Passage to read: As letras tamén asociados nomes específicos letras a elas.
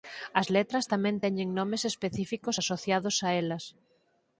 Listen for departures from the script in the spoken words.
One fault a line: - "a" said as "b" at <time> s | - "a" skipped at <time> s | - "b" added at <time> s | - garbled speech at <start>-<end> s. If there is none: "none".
- "asociados" said as "teñen" at 1.2 s
- "letras" said as "asociados" at 2.6 s